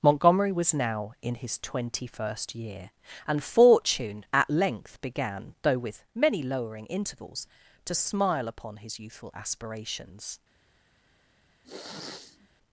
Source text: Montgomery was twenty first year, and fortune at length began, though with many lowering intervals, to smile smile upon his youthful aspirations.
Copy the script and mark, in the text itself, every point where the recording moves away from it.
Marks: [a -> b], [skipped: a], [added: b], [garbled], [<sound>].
Montgomery was [added: now in his] twenty first year, and fortune at length began, though with many lowering intervals, to smile [skipped: smile] upon his youthful aspirations. [sniff]